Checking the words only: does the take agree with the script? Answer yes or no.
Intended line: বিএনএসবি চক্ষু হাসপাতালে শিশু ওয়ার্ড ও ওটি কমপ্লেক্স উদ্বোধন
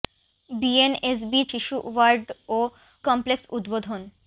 no